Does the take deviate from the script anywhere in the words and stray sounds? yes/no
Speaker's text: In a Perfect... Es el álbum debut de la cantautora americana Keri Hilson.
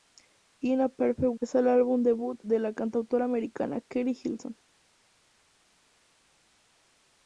no